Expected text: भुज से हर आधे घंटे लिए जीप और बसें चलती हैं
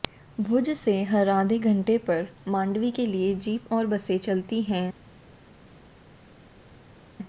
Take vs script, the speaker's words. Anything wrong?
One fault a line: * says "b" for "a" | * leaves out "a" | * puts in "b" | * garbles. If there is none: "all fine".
* puts in "पर मांडवी के"